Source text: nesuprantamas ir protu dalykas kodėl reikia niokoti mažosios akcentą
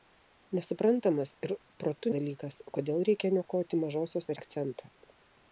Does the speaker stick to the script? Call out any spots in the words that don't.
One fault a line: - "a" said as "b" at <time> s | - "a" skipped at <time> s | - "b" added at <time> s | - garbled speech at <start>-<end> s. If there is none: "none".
none